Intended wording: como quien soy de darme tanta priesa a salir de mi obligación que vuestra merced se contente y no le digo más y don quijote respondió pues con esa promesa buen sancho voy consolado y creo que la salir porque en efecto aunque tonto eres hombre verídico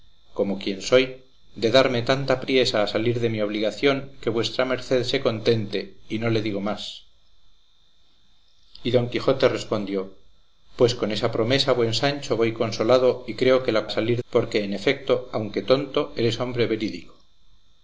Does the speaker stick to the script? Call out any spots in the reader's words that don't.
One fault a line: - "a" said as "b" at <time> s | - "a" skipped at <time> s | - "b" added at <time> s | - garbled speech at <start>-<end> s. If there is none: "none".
none